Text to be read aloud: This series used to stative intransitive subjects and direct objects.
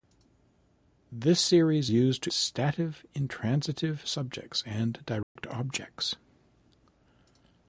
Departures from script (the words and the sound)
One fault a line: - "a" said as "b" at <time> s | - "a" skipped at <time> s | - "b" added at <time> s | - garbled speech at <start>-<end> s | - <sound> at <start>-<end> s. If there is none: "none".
- dropout at 5.2-5.4 s